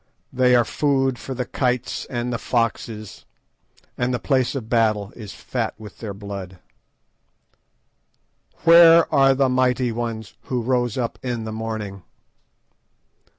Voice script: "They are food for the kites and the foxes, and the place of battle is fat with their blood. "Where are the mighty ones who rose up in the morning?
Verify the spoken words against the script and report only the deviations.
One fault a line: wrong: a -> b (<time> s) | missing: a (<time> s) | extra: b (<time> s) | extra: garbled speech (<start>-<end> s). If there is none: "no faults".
no faults